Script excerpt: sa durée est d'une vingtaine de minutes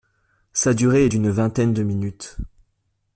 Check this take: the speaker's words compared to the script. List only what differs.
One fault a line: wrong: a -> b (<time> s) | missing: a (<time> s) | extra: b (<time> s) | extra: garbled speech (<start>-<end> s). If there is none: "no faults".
no faults